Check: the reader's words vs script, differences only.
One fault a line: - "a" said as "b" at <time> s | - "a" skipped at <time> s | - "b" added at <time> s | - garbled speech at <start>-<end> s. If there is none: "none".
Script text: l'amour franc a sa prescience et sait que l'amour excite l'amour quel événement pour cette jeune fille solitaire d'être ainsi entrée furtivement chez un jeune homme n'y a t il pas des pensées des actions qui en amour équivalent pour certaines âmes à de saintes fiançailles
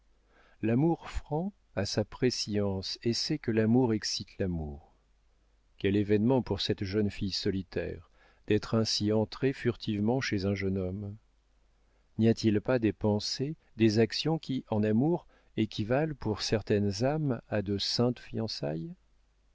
none